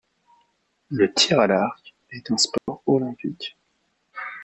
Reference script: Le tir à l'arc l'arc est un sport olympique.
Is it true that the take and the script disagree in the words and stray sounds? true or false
true